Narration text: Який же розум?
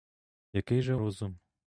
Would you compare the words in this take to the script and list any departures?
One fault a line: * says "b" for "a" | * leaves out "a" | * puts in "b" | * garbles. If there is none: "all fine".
all fine